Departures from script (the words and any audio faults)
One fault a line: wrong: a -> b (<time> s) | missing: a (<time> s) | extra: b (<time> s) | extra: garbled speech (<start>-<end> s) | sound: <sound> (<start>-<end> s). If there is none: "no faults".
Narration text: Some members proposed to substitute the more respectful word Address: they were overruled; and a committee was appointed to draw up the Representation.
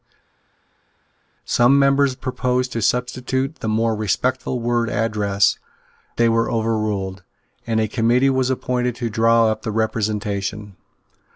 no faults